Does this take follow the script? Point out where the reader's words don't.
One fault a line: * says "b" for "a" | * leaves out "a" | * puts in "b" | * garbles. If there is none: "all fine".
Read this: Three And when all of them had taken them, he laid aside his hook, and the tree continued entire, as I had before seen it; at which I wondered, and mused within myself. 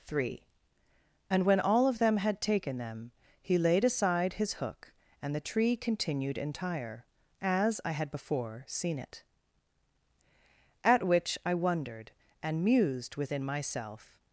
all fine